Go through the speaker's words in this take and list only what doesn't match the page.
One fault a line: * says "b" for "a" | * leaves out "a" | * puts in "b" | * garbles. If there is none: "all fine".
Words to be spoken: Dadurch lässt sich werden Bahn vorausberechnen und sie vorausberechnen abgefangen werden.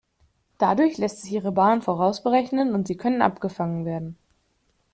* says "ihre" for "werden"
* says "können" for "vorausberechnen"